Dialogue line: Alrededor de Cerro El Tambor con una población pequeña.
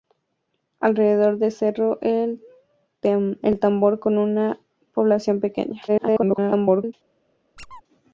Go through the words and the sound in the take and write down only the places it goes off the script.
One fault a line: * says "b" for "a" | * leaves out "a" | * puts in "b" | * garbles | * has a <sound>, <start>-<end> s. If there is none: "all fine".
* garbles
* has a squeak, 7.6-7.8 s